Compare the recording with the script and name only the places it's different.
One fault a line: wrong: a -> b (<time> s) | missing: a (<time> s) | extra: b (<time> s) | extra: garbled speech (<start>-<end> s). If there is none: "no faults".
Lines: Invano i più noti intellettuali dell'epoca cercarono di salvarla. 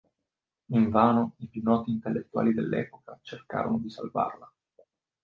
no faults